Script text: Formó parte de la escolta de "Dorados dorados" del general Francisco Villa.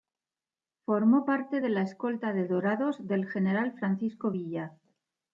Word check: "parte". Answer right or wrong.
right